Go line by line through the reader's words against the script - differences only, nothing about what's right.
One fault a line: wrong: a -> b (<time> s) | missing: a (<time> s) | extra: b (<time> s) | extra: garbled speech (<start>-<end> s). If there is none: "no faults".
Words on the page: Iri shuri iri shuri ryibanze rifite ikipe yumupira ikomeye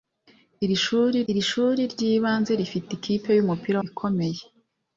no faults